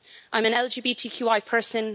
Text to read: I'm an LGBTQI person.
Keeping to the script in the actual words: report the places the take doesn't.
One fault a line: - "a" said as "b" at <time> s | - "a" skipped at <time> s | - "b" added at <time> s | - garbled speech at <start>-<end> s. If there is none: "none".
none